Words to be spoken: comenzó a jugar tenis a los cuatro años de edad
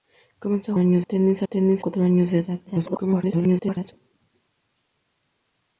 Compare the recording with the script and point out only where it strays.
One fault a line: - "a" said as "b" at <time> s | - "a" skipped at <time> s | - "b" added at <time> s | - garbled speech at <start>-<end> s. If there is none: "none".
- "jugar" said as "años" at 0.8 s
- "los" said as "tenis" at 1.4 s
- garbled speech at 2.7-3.9 s